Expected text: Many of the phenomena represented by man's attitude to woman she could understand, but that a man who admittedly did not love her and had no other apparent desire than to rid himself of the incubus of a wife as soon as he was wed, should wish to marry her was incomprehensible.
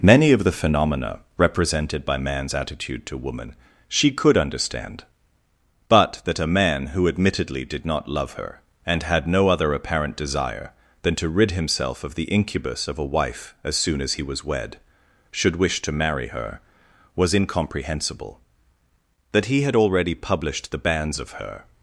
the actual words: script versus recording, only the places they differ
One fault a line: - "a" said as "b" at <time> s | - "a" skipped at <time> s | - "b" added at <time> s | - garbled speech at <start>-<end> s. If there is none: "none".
- "That he had already published the banns of her" added at 19.3 s